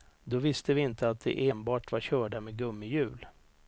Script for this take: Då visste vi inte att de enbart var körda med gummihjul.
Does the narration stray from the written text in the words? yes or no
no